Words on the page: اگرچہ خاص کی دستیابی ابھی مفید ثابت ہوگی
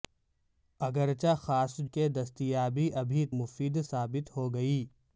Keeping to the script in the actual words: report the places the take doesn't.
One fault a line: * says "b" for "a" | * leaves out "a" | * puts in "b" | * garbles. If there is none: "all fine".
all fine